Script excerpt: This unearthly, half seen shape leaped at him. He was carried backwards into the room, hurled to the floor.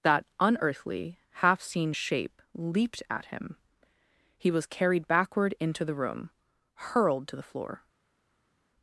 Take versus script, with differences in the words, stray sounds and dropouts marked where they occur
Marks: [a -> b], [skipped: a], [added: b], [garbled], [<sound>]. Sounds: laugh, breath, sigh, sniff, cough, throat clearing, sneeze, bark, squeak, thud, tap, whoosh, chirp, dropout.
[This -> That] unearthly, half seen shape leaped at him. He was carried [backwards -> backward] into the room, hurled to the floor.